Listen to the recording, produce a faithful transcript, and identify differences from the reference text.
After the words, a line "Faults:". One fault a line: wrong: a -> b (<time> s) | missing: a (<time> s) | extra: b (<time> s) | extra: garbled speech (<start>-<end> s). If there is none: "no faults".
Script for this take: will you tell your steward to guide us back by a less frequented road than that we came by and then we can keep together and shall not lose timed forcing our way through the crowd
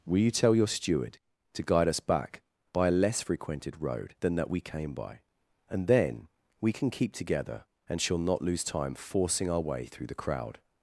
will you tell your steward to guide us back by a less frequented road than that we came by and then we can keep together and shall not lose time forcing our way through the crowd
Faults:
wrong: timed -> time (8.6 s)